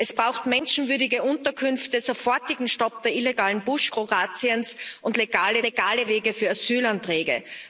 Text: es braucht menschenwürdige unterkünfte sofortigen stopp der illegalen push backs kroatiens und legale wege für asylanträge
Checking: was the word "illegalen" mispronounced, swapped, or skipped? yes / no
no